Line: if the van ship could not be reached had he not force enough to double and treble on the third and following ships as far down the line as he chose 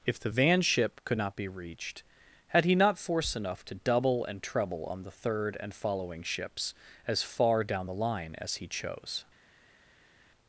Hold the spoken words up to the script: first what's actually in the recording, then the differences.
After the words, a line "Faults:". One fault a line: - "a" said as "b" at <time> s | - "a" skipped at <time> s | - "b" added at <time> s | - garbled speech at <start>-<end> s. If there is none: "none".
if the van ship could not be reached had he not force enough to double and treble on the third and following ships as far down the line as he chose
Faults:
none